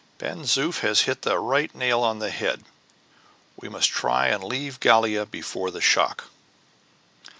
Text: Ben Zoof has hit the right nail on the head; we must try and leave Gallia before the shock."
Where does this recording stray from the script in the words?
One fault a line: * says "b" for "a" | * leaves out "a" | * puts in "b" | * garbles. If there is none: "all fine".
all fine